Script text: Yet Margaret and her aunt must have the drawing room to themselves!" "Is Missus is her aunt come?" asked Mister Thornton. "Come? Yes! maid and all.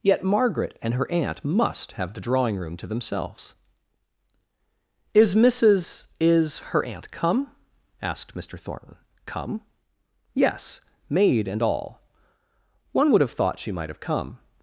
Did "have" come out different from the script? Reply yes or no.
no